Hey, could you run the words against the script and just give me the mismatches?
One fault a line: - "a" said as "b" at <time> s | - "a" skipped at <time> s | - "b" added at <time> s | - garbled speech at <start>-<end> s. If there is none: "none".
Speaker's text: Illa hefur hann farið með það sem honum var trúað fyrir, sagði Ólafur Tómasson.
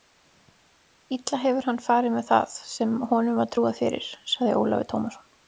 none